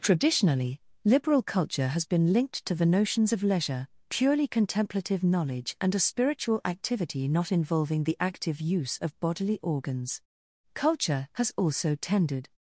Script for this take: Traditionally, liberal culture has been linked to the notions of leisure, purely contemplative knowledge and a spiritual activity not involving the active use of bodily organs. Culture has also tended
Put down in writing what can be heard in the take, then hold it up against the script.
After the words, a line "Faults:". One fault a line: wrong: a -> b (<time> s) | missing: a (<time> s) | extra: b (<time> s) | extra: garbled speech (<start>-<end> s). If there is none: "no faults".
Traditionally, liberal culture has been linked to the notions of leisure, purely contemplative knowledge and a spiritual activity not involving the active use of bodily organs. Culture has also tended
Faults:
no faults